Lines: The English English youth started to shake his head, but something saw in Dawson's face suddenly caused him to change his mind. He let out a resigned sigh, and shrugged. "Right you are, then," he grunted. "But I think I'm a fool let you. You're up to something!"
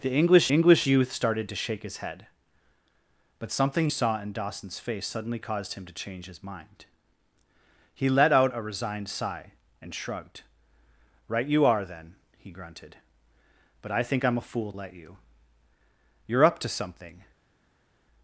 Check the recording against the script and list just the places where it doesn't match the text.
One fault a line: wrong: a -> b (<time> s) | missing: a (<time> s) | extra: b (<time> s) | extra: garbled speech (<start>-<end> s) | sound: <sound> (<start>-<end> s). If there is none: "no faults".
no faults